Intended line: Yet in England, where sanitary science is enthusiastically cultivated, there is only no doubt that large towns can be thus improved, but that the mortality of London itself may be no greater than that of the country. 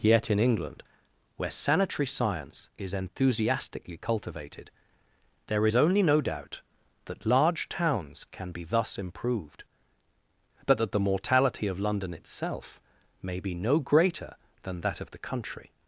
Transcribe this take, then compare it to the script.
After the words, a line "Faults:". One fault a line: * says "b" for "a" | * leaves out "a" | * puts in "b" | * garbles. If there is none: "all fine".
Yet in England, where sanitary science is enthusiastically cultivated, there is only no doubt that large towns can be thus improved, but that the mortality of London itself may be no greater than that of the country.
Faults:
all fine